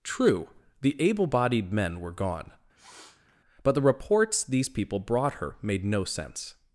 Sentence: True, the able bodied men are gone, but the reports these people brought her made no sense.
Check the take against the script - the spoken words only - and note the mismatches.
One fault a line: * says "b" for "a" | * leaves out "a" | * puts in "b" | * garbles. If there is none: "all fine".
* says "were" for "are"